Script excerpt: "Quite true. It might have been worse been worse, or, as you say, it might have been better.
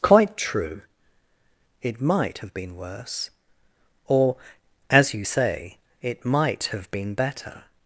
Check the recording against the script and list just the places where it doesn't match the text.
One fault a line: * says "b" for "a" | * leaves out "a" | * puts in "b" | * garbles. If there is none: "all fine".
* leaves out "been worse"